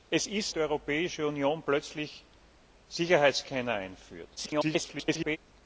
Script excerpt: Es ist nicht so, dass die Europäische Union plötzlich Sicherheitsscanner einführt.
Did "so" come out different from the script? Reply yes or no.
yes